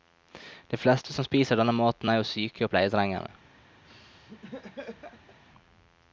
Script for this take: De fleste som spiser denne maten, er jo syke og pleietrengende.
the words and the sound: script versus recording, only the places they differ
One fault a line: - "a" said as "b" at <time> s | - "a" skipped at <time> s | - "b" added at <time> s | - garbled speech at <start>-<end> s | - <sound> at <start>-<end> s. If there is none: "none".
- laugh at 3.8-5.4 s